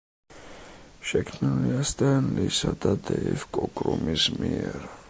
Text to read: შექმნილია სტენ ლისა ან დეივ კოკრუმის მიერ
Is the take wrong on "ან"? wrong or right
wrong